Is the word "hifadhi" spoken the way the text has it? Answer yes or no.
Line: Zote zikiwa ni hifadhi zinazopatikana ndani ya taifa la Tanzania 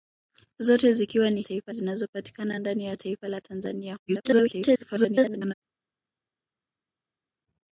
no